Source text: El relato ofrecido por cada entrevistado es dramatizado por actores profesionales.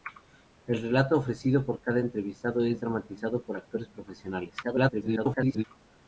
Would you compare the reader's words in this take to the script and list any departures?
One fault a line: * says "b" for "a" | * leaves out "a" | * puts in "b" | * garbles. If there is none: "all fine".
* garbles